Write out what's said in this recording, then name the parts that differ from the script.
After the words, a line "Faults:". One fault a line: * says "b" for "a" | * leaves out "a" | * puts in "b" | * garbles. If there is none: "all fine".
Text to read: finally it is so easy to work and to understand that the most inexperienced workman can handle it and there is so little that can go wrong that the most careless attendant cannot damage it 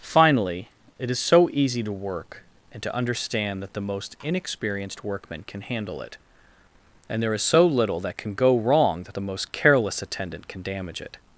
finally it is so easy to work and to understand that the most inexperienced workman can handle it and there is so little that can go wrong that the most careless attendant can damage it
Faults:
* says "can" for "cannot"